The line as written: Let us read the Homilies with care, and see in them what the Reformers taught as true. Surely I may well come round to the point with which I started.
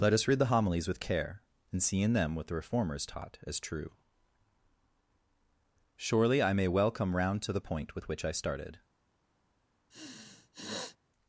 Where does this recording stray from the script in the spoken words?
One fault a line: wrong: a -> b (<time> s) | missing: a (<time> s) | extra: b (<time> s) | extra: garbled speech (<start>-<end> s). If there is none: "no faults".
no faults